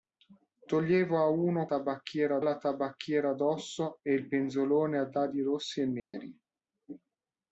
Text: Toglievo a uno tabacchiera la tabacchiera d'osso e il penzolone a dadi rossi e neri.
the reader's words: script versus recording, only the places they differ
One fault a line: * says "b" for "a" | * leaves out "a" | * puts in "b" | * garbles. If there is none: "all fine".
all fine